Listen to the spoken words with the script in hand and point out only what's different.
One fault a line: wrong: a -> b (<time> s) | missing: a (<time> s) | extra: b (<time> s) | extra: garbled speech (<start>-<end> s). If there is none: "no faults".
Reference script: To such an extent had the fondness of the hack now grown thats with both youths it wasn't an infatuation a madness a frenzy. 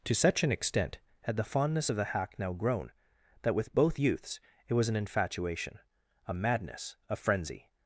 wrong: thats -> that (3.4 s)
wrong: wasn't -> was (4.7 s)